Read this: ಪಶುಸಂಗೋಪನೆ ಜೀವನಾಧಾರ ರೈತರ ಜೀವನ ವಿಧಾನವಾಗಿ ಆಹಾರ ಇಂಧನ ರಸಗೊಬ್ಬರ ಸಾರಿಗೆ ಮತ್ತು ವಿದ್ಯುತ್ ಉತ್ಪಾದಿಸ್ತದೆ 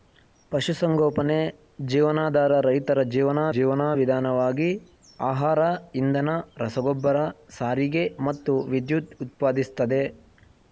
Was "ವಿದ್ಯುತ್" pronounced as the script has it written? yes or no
yes